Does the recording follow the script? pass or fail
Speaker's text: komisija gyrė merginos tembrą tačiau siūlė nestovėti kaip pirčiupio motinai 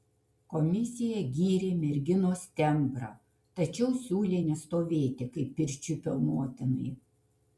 pass